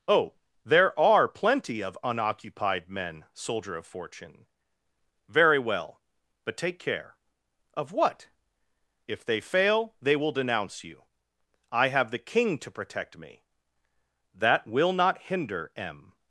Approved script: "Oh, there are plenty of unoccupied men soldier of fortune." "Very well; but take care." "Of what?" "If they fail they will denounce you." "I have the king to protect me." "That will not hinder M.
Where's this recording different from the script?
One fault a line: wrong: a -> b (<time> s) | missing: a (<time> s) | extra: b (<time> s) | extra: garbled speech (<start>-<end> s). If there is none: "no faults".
no faults